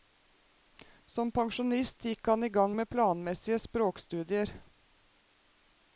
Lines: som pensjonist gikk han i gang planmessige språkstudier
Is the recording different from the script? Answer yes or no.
yes